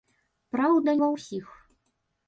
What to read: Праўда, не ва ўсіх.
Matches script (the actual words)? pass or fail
fail